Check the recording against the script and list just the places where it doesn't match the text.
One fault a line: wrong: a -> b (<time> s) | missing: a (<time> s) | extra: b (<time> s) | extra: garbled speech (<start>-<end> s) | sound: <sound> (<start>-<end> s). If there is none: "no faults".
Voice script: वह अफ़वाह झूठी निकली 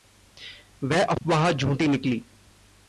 no faults